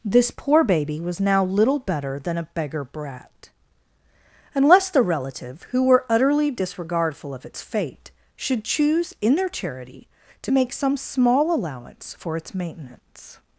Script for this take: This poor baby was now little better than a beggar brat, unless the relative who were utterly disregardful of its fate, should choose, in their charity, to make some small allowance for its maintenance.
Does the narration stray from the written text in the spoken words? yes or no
no